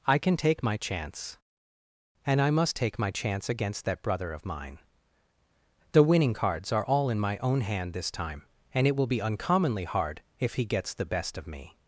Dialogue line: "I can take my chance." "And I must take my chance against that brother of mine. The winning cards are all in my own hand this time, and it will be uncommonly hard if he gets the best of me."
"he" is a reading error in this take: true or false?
false